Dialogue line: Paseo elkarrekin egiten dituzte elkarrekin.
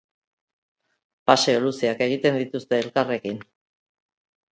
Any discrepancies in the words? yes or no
yes